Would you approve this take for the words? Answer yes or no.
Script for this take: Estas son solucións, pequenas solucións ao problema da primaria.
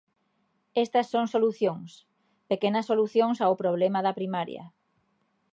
yes